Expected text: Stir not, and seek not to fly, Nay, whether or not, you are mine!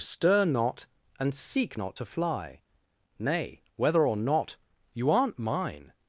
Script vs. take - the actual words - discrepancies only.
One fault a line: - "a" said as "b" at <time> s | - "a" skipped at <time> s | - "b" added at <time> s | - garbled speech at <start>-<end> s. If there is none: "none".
- "are" said as "aren't" at 5.1 s